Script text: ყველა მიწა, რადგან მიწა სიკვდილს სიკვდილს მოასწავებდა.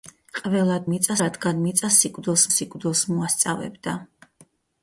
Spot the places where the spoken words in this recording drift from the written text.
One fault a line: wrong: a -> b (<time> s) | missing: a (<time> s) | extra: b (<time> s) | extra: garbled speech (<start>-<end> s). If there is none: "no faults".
no faults